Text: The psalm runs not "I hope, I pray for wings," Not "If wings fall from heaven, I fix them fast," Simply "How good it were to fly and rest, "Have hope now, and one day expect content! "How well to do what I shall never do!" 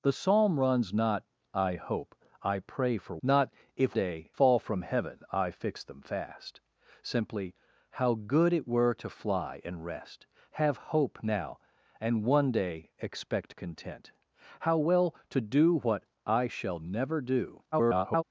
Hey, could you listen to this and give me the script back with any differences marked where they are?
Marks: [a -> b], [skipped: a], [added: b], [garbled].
The psalm runs not "I hope, I pray for [skipped: wings,"] Not "If [wings -> day] fall from heaven, I fix them fast," Simply "How good it were to fly and rest, "Have hope now, and one day expect content! "How well to do what I shall never do!" [garbled]